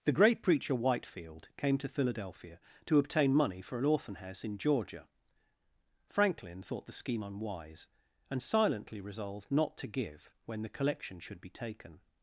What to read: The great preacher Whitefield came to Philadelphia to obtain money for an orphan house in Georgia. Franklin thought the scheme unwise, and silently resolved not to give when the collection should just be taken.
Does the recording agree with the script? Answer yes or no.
no